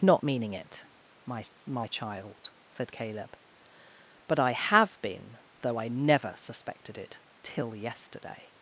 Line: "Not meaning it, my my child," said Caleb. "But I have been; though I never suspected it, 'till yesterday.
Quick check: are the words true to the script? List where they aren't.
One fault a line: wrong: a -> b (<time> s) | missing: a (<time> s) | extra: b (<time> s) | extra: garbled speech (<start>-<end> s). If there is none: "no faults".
no faults